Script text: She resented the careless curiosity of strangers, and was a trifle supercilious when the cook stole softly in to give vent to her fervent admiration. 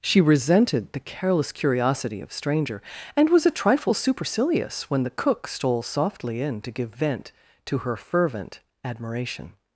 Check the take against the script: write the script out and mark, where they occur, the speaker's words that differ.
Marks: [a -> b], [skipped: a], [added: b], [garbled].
She resented the careless curiosity of [strangers, -> stranger] and was a trifle supercilious when the cook stole softly in to give vent to her fervent admiration.